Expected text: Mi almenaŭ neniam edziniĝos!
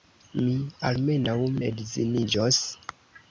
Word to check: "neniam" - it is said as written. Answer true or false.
false